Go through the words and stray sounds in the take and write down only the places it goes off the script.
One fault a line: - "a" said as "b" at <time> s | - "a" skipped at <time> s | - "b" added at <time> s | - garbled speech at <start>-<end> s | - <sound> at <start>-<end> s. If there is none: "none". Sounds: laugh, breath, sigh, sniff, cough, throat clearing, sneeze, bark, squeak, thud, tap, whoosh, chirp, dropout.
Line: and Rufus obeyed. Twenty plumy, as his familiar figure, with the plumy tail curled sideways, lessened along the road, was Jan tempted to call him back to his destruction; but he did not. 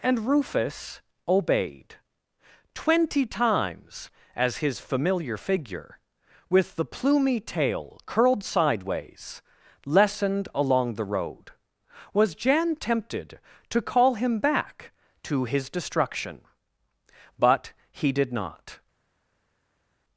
- "plumy" said as "times" at 3.2 s